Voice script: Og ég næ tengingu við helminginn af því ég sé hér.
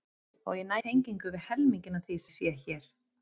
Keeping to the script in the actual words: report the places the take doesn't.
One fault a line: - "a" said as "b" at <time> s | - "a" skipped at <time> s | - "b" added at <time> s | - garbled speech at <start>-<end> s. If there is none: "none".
none